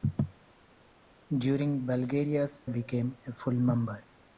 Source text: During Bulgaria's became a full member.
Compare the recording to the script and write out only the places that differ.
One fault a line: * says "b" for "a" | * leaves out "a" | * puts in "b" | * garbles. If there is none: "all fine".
all fine